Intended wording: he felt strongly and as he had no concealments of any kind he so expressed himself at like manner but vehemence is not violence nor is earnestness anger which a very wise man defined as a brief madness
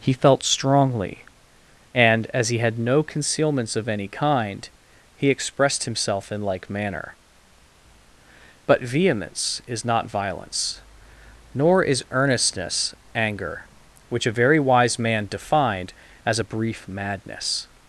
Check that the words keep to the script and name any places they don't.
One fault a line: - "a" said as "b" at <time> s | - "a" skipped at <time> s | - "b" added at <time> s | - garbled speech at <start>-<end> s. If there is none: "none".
- "so" skipped at 5.3 s
- "at" said as "in" at 6.3 s